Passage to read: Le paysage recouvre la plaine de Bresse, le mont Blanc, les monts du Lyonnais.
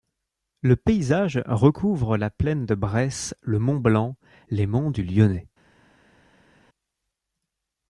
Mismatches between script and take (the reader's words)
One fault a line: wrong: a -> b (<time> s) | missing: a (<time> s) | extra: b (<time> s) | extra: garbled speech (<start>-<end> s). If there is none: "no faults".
no faults